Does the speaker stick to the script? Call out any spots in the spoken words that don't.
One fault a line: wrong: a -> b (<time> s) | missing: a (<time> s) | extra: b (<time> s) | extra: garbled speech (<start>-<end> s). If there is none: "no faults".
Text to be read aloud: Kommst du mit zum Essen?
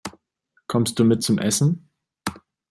no faults